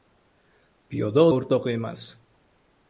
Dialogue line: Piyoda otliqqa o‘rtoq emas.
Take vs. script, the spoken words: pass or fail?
fail